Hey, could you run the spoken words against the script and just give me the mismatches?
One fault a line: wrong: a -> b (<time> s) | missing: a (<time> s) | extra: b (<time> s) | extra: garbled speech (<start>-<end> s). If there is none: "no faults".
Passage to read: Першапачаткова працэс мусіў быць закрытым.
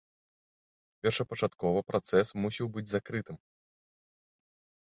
no faults